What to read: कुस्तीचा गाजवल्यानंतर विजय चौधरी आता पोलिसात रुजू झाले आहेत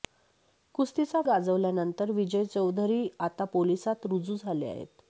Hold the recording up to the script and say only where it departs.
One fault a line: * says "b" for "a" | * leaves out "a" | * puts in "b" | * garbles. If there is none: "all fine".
all fine